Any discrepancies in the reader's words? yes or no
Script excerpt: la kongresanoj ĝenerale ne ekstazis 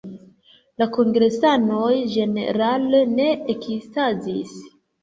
no